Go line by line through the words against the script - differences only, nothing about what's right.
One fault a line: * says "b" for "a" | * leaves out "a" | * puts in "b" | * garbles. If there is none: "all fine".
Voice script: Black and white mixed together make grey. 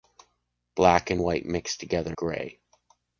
* leaves out "make"